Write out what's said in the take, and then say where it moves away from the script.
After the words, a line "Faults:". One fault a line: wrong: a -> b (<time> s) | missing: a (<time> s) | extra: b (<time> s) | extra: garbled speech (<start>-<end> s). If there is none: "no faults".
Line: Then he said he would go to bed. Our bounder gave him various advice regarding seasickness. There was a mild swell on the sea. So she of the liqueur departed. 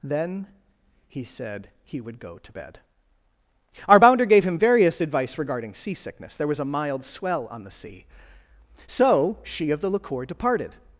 Then he said he would go to bed. Our bounder gave him various advice regarding seasickness. There was a mild swell on the sea. So she of the liqueur departed.
Faults:
no faults